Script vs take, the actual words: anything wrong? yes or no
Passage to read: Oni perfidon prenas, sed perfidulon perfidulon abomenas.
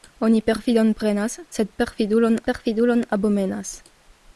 no